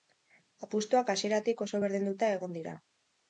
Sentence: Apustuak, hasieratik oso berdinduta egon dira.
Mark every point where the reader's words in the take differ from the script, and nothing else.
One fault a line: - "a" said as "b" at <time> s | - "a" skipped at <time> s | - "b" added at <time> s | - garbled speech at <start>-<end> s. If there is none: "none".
none